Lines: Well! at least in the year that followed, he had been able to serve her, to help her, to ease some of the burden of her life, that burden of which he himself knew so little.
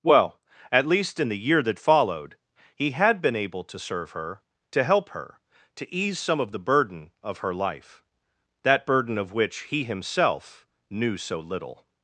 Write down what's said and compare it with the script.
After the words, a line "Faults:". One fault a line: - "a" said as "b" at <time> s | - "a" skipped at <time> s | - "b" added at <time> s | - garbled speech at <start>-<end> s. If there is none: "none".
Well! at least in the year that followed, he had been able to serve her, to help her, to ease some of the burden of her life, that burden of which he himself knew so little.
Faults:
none